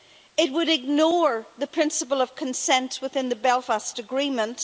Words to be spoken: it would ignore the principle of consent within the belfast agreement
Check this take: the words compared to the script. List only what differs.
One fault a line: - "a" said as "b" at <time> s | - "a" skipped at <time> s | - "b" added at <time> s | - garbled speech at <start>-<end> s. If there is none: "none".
none